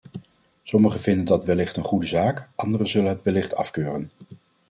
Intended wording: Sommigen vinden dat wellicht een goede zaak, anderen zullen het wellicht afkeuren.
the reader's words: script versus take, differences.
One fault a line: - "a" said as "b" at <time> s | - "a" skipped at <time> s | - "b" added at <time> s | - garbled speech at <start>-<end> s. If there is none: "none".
none